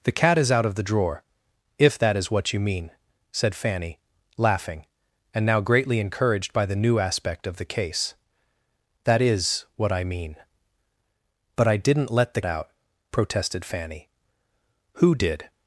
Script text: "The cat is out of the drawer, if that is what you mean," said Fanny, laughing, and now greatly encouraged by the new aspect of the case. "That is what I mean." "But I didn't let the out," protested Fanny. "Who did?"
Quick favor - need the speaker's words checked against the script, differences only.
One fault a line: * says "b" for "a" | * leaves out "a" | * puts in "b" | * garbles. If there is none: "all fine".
all fine